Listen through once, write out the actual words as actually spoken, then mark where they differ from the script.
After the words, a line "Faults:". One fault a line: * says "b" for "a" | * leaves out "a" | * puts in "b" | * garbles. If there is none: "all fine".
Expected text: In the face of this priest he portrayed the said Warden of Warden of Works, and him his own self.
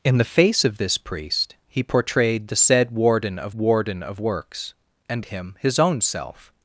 In the face of this priest he portrayed the said Warden of Warden of Works, and him his own self.
Faults:
all fine